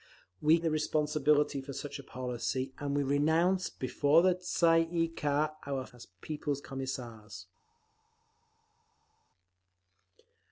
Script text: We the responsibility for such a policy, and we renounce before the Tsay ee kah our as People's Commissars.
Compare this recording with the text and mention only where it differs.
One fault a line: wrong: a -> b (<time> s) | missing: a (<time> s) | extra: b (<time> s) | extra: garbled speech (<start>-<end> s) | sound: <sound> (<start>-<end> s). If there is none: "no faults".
no faults